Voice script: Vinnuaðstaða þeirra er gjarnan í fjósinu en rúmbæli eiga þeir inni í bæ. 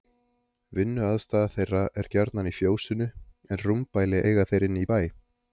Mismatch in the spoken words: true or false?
false